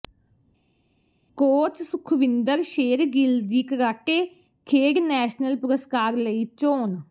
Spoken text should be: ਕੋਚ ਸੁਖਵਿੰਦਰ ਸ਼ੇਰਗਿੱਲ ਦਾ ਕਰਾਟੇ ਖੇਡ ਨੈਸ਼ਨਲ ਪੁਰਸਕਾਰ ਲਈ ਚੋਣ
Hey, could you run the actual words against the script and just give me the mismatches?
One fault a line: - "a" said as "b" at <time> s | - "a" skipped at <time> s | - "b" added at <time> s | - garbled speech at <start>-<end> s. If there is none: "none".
- "ਦਾ" said as "ਦੀ" at 3.4 s